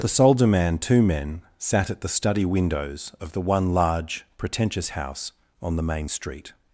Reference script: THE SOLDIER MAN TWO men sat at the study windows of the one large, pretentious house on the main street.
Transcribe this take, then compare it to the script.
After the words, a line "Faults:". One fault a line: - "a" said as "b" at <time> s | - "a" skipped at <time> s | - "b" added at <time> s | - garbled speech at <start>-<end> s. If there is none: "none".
THE SOLDIER MAN TWO men sat at the study windows of the one large, pretentious house on the main street.
Faults:
none